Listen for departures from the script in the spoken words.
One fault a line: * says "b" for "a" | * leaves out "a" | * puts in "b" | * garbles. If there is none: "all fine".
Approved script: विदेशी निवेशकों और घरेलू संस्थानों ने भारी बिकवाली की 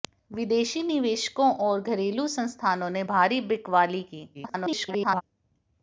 * garbles